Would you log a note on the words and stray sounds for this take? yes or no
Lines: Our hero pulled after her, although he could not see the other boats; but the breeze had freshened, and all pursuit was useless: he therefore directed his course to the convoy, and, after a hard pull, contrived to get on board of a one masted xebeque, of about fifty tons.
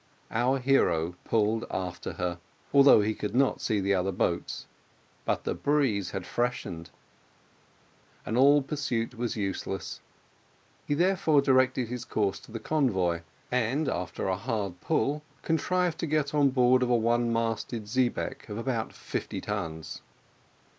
no